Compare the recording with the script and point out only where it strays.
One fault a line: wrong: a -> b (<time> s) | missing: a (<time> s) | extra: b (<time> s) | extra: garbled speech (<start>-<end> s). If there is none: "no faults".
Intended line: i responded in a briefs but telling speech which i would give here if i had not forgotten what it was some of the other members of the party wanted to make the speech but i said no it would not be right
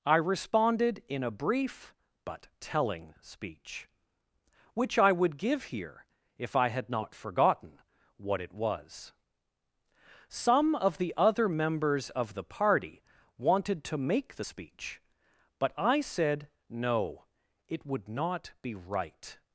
wrong: briefs -> brief (1.3 s)